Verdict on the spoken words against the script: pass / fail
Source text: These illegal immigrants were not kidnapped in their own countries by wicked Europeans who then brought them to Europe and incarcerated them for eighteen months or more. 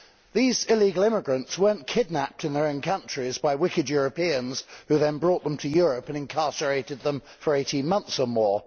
pass